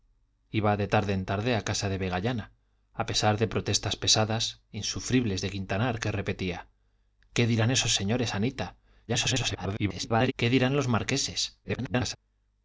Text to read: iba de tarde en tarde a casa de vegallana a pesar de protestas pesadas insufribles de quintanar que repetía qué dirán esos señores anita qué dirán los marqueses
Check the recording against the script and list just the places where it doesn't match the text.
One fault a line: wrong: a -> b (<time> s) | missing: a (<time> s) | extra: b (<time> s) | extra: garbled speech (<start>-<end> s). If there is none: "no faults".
extra: garbled speech (9.1-10.3 s)
extra: garbled speech (11.6-12.2 s)